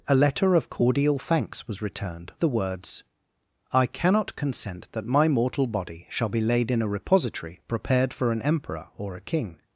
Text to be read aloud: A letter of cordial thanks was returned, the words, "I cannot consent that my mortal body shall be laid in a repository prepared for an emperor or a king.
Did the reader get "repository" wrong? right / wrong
right